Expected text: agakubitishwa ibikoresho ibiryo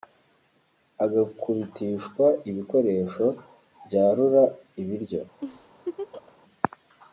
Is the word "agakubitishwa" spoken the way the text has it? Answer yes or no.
yes